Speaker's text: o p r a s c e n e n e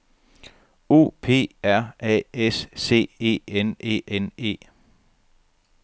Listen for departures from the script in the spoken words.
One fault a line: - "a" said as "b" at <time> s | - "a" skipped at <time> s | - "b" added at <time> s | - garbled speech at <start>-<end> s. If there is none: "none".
none